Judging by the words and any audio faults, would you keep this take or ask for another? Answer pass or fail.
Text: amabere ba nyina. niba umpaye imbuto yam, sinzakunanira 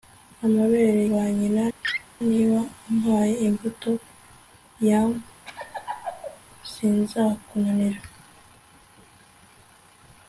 fail